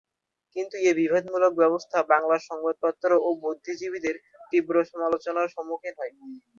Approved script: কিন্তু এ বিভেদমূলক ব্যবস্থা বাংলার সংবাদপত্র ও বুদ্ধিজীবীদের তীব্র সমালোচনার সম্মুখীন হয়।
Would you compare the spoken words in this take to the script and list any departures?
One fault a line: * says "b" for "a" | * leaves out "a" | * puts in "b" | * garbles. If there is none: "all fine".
all fine